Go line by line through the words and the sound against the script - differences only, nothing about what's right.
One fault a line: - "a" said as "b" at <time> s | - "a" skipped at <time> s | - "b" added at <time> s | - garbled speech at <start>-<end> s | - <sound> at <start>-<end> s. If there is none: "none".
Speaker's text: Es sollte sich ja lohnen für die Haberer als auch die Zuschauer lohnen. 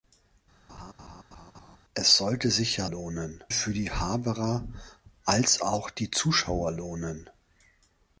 - laugh at 0.7-1.8 s